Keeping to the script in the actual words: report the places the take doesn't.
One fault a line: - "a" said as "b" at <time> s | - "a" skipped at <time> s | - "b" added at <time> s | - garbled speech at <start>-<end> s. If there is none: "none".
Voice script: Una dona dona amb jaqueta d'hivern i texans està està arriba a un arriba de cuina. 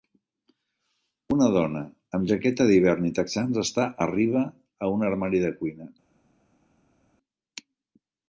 - "dona" skipped at 1.8 s
- "està" skipped at 3.9 s
- "arriba" said as "armari" at 5.1 s